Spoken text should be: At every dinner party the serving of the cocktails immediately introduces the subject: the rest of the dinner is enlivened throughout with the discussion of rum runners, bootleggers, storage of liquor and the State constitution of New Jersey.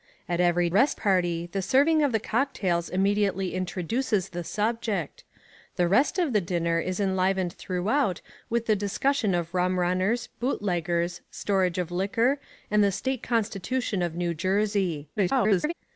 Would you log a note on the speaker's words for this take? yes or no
yes